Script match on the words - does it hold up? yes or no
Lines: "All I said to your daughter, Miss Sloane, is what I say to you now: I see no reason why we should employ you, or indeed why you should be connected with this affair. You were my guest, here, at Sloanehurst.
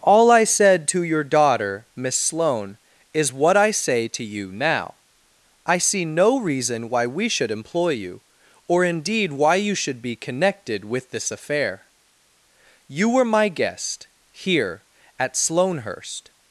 yes